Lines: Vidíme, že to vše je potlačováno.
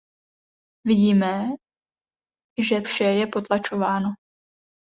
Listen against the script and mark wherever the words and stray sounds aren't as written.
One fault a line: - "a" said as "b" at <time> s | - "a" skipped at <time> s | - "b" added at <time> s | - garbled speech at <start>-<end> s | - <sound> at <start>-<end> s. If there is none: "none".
- "to" skipped at 2.8 s